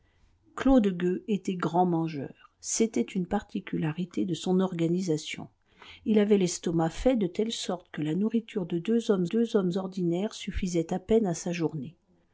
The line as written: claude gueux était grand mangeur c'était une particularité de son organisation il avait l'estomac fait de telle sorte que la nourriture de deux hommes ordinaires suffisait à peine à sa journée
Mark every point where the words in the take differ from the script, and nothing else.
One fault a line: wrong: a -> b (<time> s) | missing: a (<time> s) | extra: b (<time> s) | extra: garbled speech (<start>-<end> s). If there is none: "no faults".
extra: deux hommes (9.2 s)